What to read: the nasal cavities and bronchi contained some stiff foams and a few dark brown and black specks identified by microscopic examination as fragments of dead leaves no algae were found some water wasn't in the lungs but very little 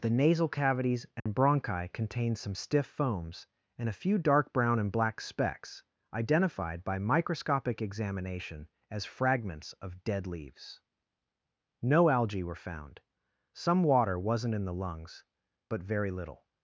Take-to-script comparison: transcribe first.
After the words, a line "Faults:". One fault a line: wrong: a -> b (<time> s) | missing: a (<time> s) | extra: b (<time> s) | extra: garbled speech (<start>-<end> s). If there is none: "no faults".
the nasal cavities and bronchi contained some stiff foams and a few dark brown and black specks identified by microscopic examination as fragments of dead leaves no algae were found some water wasn't in the lungs but very little
Faults:
no faults